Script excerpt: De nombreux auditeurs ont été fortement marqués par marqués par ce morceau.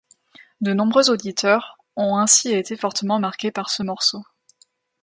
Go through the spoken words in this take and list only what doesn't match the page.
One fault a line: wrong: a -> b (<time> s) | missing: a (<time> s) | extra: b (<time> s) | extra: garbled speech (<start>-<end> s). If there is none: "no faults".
extra: ainsi (2.2 s)
missing: marqués par (3.7 s)